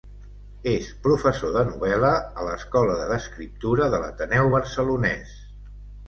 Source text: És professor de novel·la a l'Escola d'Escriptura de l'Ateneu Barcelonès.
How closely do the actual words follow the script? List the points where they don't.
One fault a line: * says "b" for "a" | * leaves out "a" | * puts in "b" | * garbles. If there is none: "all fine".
all fine